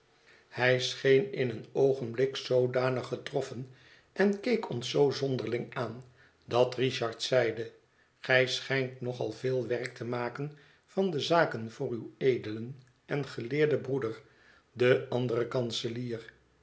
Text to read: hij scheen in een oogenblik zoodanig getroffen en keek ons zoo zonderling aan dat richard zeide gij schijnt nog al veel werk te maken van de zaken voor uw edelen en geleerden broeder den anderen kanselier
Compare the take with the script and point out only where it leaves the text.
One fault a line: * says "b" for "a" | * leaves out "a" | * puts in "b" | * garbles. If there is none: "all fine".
all fine